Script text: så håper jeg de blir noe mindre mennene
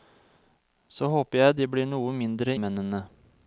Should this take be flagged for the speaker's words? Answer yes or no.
no